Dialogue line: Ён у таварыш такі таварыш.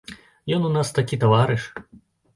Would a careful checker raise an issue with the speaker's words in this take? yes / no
yes